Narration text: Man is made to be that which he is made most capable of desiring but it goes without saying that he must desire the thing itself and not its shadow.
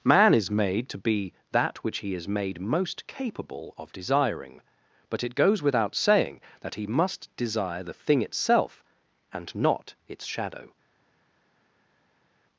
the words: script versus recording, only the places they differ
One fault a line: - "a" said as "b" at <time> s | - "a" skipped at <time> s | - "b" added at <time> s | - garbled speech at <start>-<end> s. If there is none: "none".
none